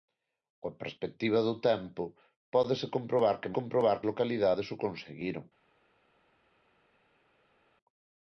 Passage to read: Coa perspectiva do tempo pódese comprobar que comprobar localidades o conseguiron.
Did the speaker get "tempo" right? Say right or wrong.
right